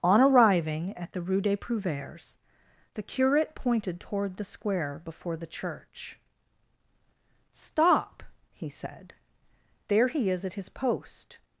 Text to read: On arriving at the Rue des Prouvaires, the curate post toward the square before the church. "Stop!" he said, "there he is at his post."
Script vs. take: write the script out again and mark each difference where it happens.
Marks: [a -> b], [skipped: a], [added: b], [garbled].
On arriving at the Rue des Prouvaires, the curate [post -> pointed] toward the square before the church. "Stop!" he said, "there he is at his post."